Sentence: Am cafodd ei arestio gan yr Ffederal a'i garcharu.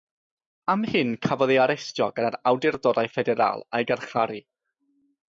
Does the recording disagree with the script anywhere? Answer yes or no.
yes